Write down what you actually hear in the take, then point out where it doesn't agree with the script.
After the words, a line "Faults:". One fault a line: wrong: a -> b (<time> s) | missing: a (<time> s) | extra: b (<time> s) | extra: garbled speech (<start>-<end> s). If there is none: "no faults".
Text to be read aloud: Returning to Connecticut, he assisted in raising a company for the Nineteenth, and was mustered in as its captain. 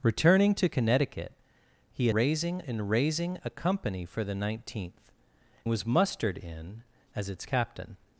Returning to Connecticut, he raising in raising a company for the Nineteenth, was mustered in as its captain.
Faults:
wrong: assisted -> raising (2.1 s)
missing: and (5.1 s)